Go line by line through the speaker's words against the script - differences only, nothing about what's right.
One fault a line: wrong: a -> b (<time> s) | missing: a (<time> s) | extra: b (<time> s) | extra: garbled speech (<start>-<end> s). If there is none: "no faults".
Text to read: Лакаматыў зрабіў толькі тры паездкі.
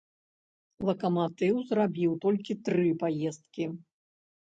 no faults